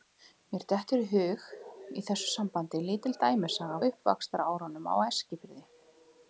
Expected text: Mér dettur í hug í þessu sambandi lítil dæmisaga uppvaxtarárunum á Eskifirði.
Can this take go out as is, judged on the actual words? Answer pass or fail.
pass